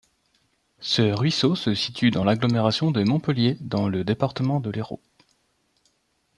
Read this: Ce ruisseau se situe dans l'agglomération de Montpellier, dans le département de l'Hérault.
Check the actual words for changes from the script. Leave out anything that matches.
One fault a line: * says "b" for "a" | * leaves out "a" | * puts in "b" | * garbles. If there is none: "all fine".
all fine